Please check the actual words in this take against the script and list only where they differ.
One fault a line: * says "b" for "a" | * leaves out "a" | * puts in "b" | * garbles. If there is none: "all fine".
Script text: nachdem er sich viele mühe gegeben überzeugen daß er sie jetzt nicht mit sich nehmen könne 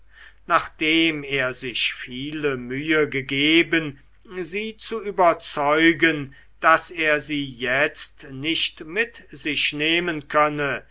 * puts in "sie zu"